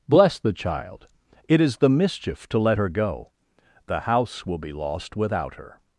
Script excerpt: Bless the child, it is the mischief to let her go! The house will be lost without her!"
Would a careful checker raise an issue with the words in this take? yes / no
no